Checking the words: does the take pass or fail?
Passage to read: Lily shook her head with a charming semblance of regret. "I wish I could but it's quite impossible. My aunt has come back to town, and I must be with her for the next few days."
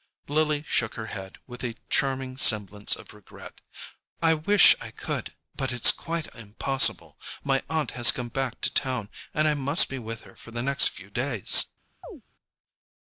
pass